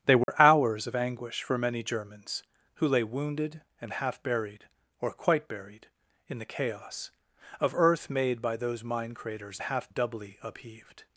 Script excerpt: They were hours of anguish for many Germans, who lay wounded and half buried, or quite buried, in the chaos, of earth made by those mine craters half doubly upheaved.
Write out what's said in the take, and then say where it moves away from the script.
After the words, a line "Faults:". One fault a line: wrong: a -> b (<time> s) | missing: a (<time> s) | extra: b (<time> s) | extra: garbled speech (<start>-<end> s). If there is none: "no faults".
They were hours of anguish for many Germans, who lay wounded and half buried, or quite buried, in the chaos, of earth made by those mine craters half doubly upheaved.
Faults:
no faults